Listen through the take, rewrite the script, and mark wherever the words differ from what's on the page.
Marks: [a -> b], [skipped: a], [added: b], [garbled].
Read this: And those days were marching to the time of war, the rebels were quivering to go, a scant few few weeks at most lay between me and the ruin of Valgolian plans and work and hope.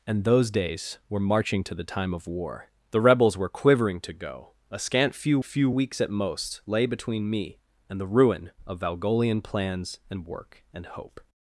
And those days were marching to the time of war, the rebels were quivering to go, a scant few few weeks at most lay between me and the ruin of Valgolian plans and work and hope.